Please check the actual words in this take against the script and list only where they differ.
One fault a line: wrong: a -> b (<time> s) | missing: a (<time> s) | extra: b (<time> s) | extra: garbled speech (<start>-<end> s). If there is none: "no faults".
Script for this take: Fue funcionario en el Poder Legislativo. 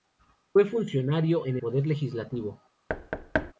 missing: el (1.6 s)